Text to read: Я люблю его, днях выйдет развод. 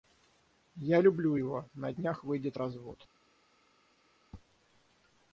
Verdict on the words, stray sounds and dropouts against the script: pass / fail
fail